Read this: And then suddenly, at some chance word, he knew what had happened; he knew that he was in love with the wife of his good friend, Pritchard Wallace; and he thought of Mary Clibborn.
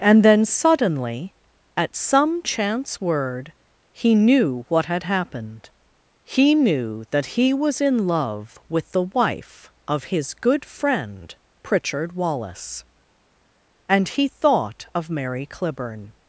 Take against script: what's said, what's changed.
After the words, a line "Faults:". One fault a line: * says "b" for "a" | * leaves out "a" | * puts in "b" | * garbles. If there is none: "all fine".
And then suddenly, at some chance word, he knew what had happened; he knew that he was in love with the wife of his good friend, Pritchard Wallace; and he thought of Mary Clibborn.
Faults:
all fine